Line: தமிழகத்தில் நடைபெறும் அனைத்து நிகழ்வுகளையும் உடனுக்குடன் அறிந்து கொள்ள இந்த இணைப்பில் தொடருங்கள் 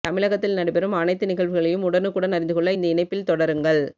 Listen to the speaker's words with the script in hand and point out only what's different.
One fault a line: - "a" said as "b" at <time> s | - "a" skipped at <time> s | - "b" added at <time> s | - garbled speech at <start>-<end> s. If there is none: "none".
none